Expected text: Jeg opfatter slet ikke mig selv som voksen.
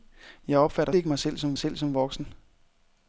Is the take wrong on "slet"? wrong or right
wrong